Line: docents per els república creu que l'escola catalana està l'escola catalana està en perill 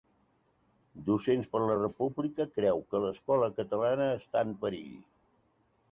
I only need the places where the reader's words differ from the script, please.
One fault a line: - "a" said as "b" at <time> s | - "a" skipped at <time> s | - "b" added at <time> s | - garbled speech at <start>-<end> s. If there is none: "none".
- "els" said as "la" at 1.6 s
- "l'escola catalana està" skipped at 4.5 s